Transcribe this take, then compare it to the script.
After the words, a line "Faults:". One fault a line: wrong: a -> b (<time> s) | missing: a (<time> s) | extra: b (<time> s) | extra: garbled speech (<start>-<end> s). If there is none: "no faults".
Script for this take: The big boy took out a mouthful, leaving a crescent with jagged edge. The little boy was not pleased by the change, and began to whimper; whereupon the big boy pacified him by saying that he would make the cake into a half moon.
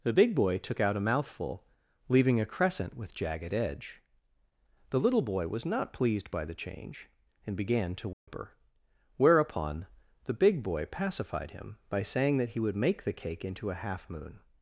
The big boy took out a mouthful, leaving a crescent with jagged edge. The little boy was not pleased by the change, and began to whimper; whereupon the big boy pacified him by saying that he would make the cake into a half moon.
Faults:
no faults